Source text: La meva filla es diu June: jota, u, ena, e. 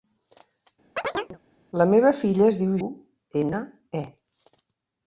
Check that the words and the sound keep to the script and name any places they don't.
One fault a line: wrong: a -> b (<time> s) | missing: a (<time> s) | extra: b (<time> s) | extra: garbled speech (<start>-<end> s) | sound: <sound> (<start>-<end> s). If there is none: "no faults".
sound: chirp (1.0-1.4 s)
missing: June jota (2.8 s)